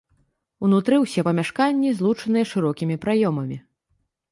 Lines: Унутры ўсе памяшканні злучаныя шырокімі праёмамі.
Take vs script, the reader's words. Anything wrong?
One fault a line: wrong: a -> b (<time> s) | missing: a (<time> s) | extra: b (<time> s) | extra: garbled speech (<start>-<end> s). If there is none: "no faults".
no faults